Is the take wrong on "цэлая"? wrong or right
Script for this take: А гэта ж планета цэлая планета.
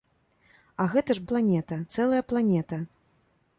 right